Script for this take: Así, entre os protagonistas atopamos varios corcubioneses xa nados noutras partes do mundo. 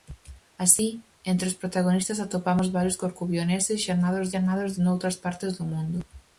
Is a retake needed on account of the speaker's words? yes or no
yes